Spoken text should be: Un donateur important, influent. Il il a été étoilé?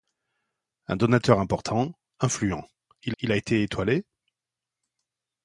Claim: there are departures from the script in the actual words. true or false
false